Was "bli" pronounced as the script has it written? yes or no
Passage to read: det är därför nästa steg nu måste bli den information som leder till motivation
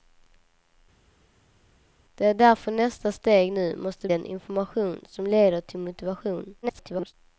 no